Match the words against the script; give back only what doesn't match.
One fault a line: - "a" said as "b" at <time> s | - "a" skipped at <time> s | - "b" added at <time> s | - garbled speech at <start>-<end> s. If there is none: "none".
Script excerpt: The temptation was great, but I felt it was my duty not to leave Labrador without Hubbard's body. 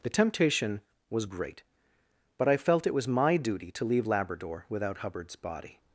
- "not" skipped at 3.7 s